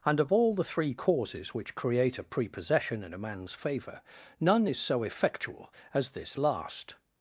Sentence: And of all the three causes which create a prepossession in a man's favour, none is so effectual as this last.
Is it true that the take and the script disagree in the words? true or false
false